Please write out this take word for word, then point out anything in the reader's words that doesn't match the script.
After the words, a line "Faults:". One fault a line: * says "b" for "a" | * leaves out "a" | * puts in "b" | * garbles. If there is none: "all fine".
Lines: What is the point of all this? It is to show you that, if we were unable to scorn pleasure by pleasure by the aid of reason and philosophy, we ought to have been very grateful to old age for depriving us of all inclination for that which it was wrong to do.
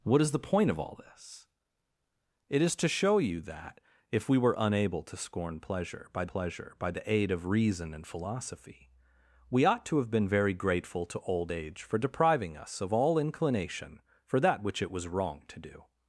What is the point of all this? It is to show you that, if we were unable to scorn pleasure by pleasure by the aid of reason and philosophy, we ought to have been very grateful to old age for depriving us of all inclination for that which it was wrong to do.
Faults:
all fine